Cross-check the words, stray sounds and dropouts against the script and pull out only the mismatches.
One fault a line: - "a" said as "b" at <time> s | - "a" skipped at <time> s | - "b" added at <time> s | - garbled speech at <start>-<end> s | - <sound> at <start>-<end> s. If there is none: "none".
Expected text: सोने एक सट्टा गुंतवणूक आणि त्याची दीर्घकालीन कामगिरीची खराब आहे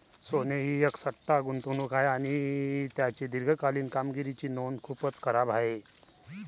- "ही" added at 0.6 s
- "आहे" added at 1.9 s
- "नोंद खूपच" added at 4.5 s